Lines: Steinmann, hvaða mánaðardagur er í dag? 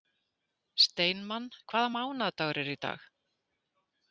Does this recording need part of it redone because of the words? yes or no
no